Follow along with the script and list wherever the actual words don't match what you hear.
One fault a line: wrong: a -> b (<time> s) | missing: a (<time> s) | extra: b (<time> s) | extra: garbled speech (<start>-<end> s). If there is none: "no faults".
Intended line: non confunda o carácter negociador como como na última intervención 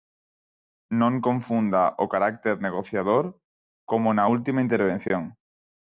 missing: como (4.1 s)